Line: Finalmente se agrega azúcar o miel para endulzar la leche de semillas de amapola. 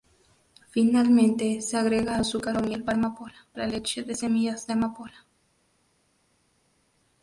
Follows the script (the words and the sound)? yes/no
no